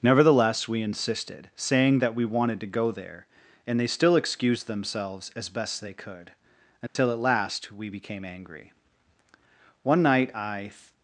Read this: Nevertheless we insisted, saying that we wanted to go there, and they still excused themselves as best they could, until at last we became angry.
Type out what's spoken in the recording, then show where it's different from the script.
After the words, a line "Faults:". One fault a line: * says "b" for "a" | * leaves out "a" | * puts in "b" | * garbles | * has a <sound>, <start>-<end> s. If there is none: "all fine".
Nevertheless we insisted, saying that we wanted to go there, and they still excused themselves as best they could, until at last we became angry. One night I
Faults:
* has a dropout, 6.9-7.0 s
* puts in "One night I"